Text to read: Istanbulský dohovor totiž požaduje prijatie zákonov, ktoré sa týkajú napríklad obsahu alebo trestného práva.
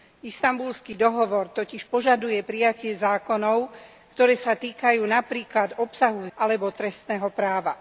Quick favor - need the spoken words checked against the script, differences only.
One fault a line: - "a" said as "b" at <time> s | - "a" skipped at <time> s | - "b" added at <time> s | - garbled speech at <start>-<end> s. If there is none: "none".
none